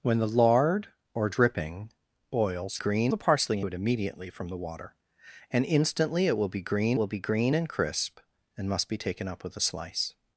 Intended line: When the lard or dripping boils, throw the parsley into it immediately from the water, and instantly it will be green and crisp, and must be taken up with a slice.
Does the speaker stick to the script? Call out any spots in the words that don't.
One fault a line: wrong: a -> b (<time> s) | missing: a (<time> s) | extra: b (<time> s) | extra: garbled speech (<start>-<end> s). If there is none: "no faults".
wrong: throw -> green (2.7 s)
missing: into (3.6 s)
extra: will be green (7.0 s)